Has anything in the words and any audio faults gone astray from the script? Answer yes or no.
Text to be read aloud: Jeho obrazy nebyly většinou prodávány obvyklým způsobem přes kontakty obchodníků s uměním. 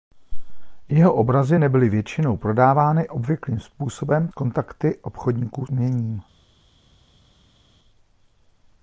yes